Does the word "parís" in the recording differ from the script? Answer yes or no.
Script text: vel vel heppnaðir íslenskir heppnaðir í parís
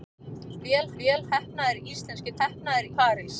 no